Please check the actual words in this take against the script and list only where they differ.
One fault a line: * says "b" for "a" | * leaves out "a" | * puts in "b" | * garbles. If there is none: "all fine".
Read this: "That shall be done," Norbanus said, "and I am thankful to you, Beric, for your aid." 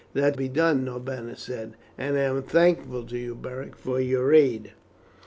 * leaves out "shall"